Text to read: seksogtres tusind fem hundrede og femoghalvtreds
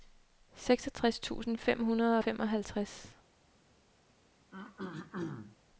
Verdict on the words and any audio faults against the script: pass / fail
fail